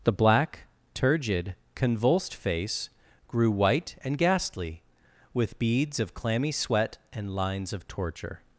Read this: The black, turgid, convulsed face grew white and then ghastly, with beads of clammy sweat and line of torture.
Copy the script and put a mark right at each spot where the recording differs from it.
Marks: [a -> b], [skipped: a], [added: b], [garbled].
The black, turgid, convulsed face grew white and [skipped: then] ghastly, with beads of clammy sweat and [line -> lines] of torture.